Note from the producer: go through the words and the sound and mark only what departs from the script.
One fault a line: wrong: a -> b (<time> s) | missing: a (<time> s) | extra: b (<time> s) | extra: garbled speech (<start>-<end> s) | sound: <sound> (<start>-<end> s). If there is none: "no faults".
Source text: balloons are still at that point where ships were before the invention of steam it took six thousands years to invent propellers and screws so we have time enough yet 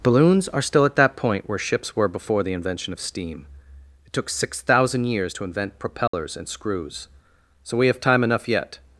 wrong: thousands -> thousand (4.6 s)
sound: dropout (6.1-6.1 s)